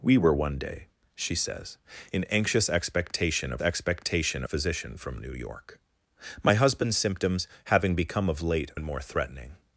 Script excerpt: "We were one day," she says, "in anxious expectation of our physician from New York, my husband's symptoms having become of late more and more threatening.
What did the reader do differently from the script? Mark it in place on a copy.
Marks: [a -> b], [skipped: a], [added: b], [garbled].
"We were one day," she says, "in anxious expectation of [our -> expectation] physician from New York, my husband's symptoms having become of late [skipped: more] and more threatening.